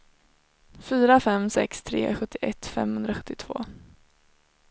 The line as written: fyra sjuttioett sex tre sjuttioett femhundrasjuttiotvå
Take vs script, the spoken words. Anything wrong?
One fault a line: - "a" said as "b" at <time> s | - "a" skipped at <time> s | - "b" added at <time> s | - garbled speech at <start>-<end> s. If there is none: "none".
- "sjuttioett" said as "fem" at 1.2 s